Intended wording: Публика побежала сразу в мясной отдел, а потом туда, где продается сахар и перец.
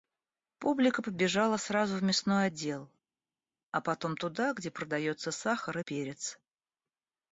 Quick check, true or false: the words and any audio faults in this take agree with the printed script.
true